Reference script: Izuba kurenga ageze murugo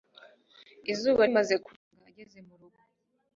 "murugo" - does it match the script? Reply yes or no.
yes